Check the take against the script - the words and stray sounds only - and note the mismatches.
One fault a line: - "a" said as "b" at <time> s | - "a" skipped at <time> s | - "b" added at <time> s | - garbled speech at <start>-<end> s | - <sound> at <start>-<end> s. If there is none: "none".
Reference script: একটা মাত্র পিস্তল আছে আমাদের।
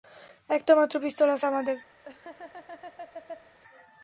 - laugh at 2.0-3.6 s